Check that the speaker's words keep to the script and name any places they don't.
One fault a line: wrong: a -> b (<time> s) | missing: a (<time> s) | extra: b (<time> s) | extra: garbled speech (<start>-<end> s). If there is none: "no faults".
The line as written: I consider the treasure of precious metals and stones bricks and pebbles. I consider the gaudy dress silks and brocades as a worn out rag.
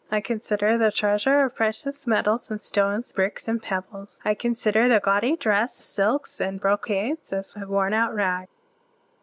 no faults